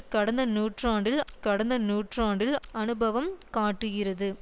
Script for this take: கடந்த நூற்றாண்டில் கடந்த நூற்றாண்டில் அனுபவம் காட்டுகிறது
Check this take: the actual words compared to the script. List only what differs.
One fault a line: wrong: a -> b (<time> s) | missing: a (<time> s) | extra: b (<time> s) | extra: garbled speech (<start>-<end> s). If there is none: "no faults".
no faults